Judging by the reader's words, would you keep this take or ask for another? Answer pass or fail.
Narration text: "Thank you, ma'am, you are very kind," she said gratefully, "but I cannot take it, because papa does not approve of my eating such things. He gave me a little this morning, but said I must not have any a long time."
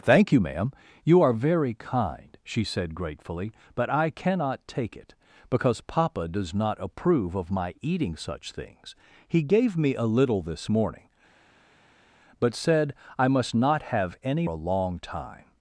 pass